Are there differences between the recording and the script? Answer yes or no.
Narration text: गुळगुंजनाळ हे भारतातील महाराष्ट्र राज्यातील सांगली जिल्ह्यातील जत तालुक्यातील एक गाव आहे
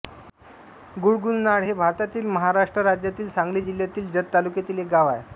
no